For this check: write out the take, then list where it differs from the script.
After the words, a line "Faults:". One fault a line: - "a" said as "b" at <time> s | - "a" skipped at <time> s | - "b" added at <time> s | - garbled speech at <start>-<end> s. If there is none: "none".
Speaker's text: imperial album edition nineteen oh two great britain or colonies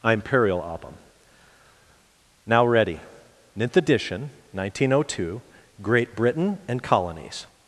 imperial album now ready ninth edition nineteen oh two great britain and colonies
Faults:
- "now ready ninth" added at 2.5 s
- "or" said as "and" at 6.7 s